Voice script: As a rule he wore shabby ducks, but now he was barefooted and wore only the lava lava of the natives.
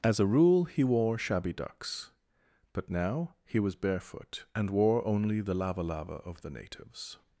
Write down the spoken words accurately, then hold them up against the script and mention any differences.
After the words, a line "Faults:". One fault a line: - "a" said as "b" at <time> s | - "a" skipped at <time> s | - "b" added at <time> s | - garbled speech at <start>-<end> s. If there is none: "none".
As a rule he wore shabby ducks, but now he was barefoot and wore only the lava lava of the natives.
Faults:
- "barefooted" said as "barefoot" at 3.8 s